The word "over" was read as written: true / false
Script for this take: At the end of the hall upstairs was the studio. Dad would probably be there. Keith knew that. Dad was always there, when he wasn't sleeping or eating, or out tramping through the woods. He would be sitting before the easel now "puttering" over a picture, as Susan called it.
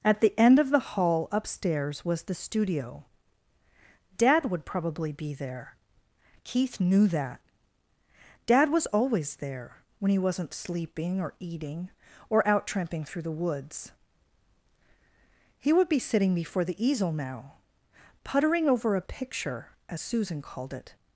true